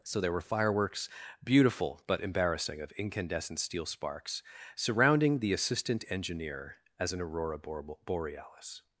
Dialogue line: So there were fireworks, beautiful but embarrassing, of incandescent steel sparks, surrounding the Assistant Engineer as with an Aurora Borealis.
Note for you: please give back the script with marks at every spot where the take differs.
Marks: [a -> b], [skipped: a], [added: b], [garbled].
So there were fireworks, beautiful but embarrassing, of incandescent steel sparks, surrounding the Assistant Engineer as [skipped: with] an Aurora Borealis.